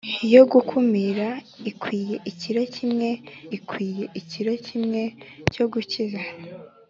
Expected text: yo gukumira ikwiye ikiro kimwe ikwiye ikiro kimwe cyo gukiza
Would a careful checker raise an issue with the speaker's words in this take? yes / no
no